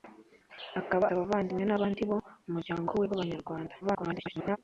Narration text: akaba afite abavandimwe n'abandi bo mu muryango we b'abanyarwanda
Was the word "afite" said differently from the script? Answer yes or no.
yes